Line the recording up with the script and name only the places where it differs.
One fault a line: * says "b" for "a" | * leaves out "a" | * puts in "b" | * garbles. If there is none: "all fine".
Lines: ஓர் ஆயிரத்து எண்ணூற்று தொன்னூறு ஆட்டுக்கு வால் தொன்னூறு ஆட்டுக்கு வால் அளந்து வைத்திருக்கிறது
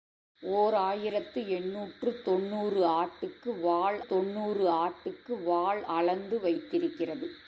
all fine